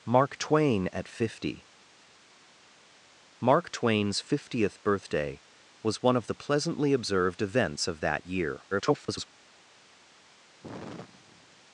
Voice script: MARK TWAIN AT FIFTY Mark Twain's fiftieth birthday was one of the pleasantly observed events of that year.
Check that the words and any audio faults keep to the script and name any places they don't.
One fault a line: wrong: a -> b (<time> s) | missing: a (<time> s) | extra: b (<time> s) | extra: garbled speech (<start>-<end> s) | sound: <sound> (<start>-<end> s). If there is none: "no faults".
extra: garbled speech (8.7-9.3 s)
sound: sigh (10.6-11.6 s)